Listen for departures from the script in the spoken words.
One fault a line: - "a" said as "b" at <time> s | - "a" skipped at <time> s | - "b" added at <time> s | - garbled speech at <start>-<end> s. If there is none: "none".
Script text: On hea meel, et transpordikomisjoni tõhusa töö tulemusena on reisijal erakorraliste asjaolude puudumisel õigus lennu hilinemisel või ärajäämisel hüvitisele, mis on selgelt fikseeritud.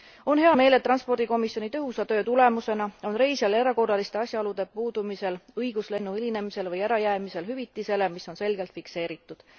none